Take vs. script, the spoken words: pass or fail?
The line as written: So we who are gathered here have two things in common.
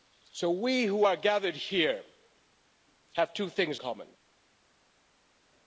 fail